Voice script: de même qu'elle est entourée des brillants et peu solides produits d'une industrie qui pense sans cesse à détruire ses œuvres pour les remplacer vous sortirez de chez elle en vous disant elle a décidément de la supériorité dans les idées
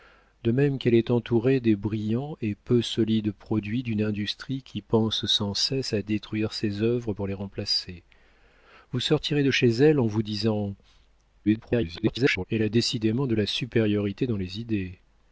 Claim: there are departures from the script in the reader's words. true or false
true